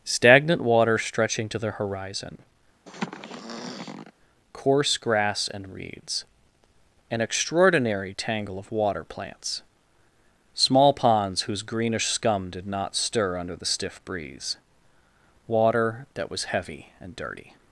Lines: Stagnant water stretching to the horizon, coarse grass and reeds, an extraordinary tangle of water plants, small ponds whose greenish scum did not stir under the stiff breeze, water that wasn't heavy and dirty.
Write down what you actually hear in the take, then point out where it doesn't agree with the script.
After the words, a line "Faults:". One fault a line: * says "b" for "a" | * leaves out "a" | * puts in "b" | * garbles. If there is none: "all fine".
Stagnant water stretching to the horizon, coarse grass and reeds, an extraordinary tangle of water plants, small ponds whose greenish scum did not stir under the stiff breeze, water that was heavy and dirty.
Faults:
* says "was" for "wasn't"